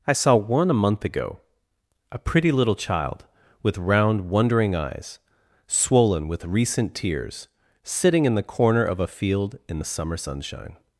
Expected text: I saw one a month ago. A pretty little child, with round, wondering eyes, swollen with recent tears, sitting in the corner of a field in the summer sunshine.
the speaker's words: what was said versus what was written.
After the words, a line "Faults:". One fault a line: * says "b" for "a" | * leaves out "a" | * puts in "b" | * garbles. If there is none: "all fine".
I saw one a month ago. A pretty little child, with round, wondering eyes, swollen with recent tears, sitting in the corner of a field in the summer sunshine.
Faults:
all fine